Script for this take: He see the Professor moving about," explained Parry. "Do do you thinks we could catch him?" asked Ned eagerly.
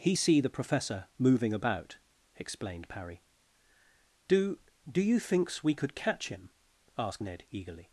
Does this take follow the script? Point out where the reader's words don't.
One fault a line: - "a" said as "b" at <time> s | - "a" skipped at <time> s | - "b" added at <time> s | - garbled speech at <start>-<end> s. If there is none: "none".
none